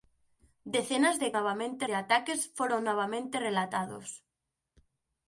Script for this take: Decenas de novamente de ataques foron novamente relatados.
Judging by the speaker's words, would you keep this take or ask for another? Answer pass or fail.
pass